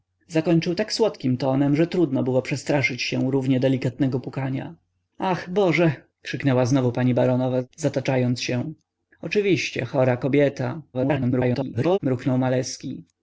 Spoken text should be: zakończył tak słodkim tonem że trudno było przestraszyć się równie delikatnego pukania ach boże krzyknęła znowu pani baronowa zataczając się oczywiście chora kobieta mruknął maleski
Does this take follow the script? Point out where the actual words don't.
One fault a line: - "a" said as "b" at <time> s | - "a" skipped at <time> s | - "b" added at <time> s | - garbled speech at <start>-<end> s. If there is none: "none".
- garbled speech at 10.9-12.0 s